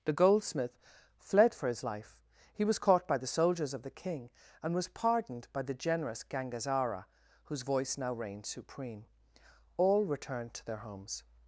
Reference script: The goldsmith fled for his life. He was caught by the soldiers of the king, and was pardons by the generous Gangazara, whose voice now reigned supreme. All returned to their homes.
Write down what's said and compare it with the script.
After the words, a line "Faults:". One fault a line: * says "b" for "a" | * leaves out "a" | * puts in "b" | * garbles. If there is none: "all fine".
The goldsmith fled for his life. He was caught by the soldiers of the king, and was pardoned by the generous Gangazara, whose voice now reigned supreme. All returned to their homes.
Faults:
* says "pardoned" for "pardons"